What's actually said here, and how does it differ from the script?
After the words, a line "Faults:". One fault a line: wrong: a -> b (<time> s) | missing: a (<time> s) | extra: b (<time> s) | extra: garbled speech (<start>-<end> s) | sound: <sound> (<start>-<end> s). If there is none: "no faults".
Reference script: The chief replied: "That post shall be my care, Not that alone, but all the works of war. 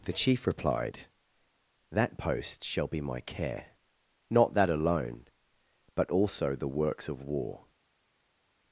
The chief replied: "That post shall be my care, Not that alone, but also the works of war.
Faults:
wrong: all -> also (6.1 s)